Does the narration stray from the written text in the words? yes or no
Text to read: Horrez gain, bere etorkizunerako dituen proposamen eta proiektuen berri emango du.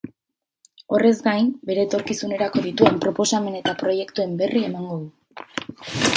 no